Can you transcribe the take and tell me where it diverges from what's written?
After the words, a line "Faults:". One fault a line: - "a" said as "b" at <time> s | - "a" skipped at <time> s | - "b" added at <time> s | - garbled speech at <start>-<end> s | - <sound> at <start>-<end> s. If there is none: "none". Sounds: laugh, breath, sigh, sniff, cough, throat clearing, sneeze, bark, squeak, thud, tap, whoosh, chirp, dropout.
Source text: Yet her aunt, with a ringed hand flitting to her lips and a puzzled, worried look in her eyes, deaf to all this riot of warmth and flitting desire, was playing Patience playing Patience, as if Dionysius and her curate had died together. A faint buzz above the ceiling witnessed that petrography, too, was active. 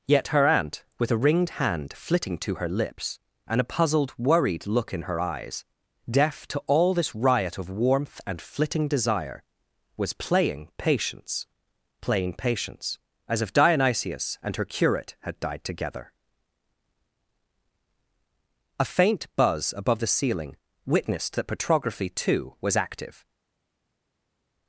Yet her aunt, with a ringed hand flitting to her lips and a puzzled, worried look in her eyes, deaf to all this riot of warmth and flitting desire, was playing Patience playing Patience, as if Dionysius and her curate had died together. A faint buzz above the ceiling witnessed that petrography, too, was active.
Faults:
none